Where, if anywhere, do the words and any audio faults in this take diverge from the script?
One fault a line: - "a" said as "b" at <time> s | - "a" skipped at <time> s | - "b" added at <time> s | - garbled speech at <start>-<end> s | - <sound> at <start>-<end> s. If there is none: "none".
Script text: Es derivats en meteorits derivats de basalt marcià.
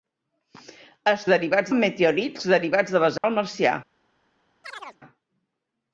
- dropout at 3.2-3.2 s
- chirp at 4.6-5.0 s